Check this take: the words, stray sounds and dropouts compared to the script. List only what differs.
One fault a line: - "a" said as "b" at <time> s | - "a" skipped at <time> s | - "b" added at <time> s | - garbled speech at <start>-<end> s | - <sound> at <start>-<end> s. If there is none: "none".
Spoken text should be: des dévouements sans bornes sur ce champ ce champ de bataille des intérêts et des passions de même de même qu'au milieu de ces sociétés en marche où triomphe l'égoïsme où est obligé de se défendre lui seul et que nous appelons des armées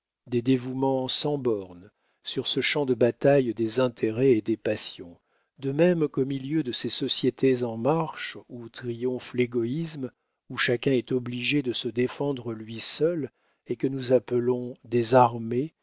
- "ce champ" skipped at 2.9 s
- "de même" skipped at 6.1 s
- "chacun" added at 10.6 s